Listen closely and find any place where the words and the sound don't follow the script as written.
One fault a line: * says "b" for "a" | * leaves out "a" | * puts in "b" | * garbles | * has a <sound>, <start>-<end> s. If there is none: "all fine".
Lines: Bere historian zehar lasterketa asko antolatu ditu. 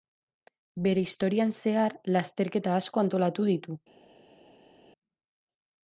all fine